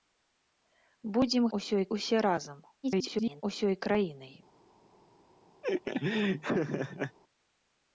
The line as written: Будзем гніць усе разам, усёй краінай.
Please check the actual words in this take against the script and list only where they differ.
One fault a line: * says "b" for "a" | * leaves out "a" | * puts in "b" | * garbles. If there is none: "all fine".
* says "усёй" for "гніць"
* garbles